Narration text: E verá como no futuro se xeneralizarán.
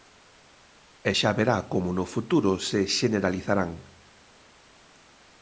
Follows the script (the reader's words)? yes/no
no